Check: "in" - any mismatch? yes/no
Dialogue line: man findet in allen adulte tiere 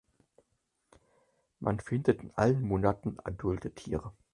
no